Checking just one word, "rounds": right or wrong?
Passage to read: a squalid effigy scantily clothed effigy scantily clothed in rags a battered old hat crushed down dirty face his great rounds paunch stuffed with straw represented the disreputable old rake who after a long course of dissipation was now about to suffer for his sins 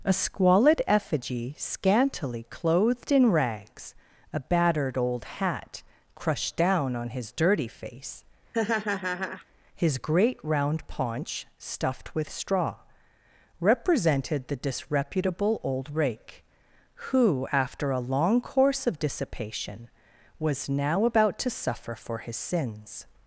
wrong